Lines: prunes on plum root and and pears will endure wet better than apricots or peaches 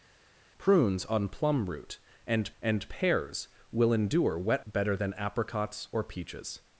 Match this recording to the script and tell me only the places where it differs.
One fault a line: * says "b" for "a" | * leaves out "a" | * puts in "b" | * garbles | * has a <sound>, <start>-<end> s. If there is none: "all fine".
all fine